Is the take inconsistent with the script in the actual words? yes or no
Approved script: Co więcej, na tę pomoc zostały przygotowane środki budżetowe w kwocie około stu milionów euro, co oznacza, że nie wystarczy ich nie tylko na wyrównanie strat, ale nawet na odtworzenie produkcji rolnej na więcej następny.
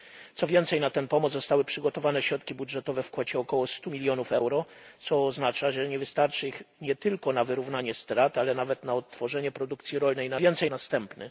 no